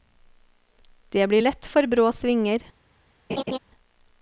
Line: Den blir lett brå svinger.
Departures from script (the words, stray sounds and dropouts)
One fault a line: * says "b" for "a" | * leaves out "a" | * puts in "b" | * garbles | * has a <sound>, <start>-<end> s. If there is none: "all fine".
* says "Det" for "Den"
* puts in "for"
* has a laugh, 3.3-3.6 s